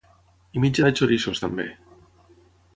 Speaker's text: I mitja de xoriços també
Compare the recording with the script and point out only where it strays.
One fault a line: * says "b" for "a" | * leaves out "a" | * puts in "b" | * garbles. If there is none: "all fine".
all fine